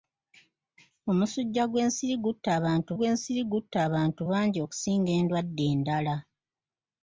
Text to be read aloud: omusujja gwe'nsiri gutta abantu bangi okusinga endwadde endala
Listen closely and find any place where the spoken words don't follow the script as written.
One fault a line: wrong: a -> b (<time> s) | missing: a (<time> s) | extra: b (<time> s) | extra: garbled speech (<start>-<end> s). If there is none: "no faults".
extra: gwe'nsiri gutta abantu (3.0 s)